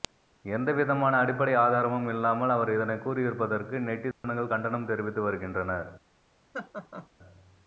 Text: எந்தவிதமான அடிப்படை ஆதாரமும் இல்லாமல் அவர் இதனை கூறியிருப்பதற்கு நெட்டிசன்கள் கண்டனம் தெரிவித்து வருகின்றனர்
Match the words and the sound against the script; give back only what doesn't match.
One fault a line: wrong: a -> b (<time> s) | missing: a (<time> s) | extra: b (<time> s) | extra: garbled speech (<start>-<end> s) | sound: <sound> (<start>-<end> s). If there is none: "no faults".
sound: dropout (4.1-4.2 s)
sound: laugh (6.5-7.1 s)